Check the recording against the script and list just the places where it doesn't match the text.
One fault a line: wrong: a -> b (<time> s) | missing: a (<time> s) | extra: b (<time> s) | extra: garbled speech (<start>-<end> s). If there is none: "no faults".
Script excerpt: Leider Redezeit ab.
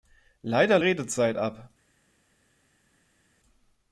no faults